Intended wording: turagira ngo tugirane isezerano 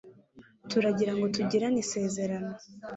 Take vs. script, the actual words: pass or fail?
pass